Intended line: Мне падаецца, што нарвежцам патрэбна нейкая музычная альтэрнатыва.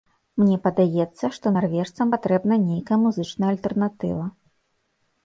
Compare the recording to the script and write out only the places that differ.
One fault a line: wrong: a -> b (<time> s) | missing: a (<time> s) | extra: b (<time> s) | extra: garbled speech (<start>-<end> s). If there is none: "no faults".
no faults